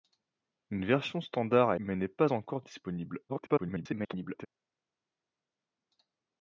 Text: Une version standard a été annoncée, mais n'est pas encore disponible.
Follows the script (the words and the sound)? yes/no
no